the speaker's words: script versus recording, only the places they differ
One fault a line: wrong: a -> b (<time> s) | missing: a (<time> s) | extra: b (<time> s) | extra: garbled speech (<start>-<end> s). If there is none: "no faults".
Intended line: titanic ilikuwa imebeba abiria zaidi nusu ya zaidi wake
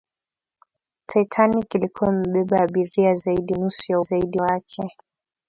no faults